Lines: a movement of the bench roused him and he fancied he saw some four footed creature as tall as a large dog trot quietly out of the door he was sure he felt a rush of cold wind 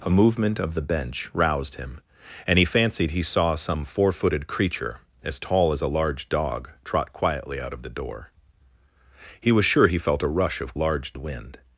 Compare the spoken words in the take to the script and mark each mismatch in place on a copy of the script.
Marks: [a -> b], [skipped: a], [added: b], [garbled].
a movement of the bench roused him and he fancied he saw some four footed creature as tall as a large dog trot quietly out of the door he was sure he felt a rush of [cold -> large] wind